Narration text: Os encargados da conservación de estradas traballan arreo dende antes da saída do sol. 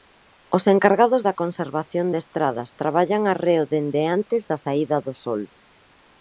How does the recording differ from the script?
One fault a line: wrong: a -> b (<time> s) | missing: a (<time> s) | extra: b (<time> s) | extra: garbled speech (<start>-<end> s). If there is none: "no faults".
no faults